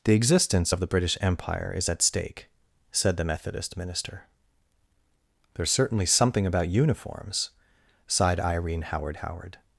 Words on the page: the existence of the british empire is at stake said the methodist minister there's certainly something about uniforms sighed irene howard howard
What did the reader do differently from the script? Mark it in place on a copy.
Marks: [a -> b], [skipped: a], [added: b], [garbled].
the existence of the british empire is at stake said the methodist minister there's certainly something about uniforms sighed irene howard howard